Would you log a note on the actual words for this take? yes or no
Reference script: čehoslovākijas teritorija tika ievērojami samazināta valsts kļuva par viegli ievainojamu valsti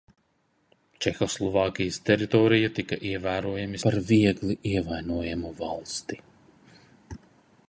yes